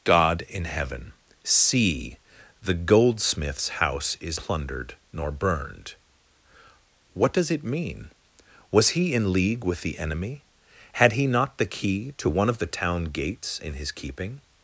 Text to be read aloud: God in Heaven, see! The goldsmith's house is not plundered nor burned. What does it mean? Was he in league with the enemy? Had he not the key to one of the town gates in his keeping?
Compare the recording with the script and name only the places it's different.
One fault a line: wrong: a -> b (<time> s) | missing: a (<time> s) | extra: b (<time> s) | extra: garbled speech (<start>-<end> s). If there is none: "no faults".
missing: not (4.4 s)